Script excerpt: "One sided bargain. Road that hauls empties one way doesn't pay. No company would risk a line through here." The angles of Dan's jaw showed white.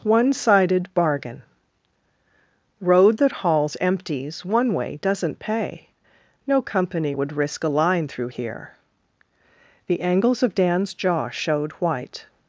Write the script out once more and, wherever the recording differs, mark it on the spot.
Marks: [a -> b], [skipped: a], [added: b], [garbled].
"One sided bargain. Road that hauls empties one way doesn't pay. No company would risk a line through here." The angles of Dan's jaw showed white.